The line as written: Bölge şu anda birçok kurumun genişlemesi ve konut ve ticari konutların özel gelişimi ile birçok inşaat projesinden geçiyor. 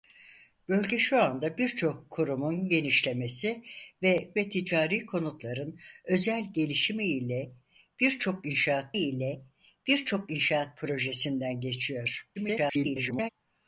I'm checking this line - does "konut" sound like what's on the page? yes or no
no